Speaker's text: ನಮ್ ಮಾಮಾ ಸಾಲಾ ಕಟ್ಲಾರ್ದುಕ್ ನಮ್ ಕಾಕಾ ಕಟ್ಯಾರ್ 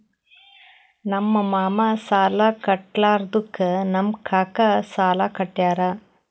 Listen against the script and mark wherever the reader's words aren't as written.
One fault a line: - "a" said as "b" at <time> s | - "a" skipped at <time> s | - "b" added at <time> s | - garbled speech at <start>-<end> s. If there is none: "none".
- "ಸಾಲಾ" added at 4.9 s